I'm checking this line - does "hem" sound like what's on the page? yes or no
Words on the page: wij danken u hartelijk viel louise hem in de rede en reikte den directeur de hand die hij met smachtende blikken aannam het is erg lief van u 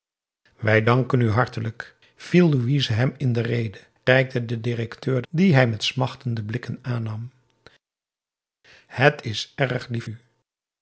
yes